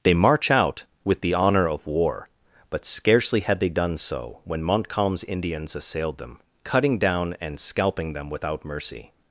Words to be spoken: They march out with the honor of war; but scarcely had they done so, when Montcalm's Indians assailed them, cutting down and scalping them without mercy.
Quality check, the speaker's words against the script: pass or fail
pass